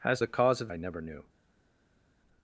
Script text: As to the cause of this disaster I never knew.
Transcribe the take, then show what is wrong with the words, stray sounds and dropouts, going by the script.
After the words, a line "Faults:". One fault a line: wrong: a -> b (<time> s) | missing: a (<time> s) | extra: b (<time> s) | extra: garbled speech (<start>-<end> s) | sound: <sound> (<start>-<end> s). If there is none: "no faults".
As the cause of I never knew.
Faults:
missing: to (0.2 s)
missing: this disaster (0.7 s)